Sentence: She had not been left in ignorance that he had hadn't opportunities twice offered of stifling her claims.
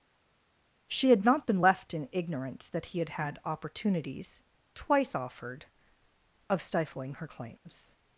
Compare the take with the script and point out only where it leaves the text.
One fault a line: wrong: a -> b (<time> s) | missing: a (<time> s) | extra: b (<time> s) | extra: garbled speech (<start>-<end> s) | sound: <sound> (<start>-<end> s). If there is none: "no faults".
wrong: hadn't -> had (3.1 s)